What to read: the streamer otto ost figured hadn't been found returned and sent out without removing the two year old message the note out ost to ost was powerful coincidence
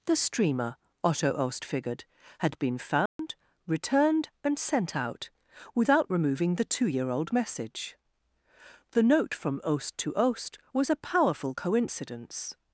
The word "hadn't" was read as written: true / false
false